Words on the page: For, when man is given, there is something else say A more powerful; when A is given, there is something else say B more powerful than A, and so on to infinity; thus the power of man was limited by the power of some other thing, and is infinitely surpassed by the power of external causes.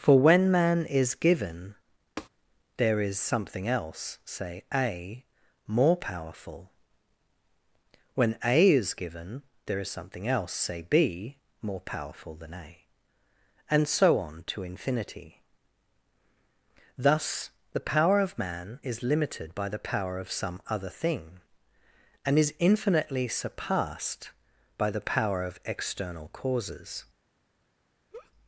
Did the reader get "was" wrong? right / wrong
wrong